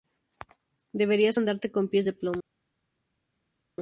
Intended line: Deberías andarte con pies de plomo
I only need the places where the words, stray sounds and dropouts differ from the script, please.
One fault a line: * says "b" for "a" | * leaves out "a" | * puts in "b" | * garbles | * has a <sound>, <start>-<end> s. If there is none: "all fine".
all fine